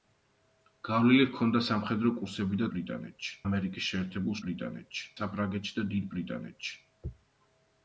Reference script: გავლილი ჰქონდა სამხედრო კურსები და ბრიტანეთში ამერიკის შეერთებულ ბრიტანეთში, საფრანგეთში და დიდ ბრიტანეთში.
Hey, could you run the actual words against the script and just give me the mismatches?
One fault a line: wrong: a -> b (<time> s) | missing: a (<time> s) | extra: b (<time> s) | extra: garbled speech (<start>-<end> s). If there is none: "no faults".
no faults